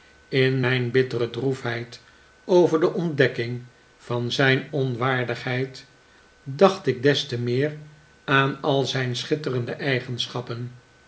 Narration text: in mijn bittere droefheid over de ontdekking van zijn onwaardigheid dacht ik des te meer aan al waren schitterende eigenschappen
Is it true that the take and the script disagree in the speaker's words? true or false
true